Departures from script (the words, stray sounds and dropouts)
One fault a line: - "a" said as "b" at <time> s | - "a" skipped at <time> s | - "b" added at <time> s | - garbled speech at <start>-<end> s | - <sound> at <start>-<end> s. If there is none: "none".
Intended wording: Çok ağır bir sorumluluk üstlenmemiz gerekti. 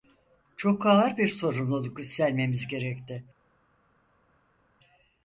none